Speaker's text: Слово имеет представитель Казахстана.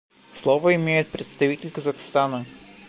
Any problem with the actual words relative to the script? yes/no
no